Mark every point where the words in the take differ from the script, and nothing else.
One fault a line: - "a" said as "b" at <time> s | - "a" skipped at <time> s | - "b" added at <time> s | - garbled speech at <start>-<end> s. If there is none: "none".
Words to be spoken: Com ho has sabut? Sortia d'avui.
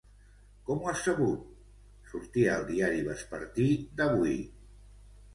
- "al diari vespertí" added at 2.6 s